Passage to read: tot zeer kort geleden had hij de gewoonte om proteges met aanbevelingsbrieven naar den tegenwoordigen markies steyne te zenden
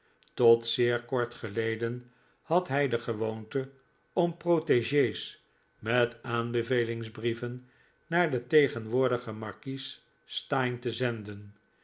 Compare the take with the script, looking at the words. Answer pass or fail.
pass